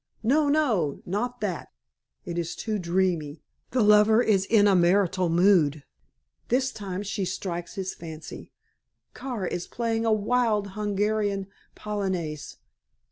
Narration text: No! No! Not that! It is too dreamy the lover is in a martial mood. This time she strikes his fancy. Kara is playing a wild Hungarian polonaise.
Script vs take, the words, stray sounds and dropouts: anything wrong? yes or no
no